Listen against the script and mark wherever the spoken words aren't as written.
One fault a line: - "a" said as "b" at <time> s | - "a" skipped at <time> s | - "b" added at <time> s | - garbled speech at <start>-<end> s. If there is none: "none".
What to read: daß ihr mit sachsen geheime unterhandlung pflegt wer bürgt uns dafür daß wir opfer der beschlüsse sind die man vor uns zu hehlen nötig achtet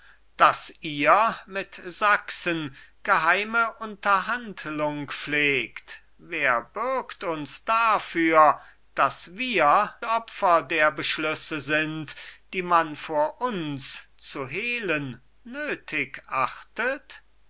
none